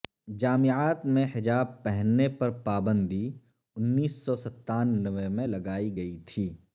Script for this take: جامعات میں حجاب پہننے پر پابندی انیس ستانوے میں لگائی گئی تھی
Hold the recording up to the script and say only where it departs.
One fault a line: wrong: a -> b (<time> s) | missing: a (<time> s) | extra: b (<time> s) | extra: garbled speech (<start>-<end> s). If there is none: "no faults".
extra: سو (4.1 s)